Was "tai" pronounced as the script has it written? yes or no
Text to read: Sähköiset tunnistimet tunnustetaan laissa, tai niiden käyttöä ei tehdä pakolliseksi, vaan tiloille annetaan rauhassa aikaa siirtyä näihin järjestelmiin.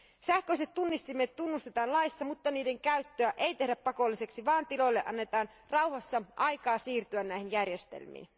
no